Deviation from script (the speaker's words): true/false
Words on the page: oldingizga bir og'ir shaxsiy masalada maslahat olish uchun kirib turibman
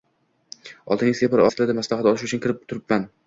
true